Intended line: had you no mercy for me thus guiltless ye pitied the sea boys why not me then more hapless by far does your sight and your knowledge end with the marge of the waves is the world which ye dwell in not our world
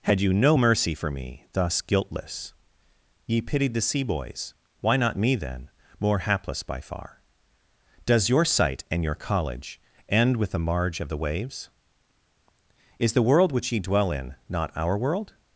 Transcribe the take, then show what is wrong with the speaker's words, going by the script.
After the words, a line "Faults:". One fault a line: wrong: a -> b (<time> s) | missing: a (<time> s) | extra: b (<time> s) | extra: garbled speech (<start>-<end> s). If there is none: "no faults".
had you no mercy for me thus guiltless ye pitied the sea boys why not me then more hapless by far does your sight and your college end with the marge of the waves is the world which ye dwell in not our world
Faults:
wrong: knowledge -> college (9.2 s)